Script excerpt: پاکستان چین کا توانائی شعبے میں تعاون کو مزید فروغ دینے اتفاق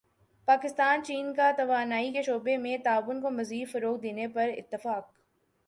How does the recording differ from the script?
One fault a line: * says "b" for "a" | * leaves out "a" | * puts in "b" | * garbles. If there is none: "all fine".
* puts in "کے"
* puts in "پر"